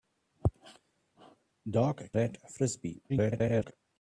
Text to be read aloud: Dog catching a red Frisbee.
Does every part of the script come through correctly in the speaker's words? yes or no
no